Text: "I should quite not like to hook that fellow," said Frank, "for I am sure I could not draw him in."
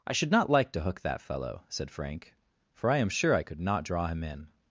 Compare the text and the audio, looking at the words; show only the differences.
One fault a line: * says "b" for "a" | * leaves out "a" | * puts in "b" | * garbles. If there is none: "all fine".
* leaves out "quite"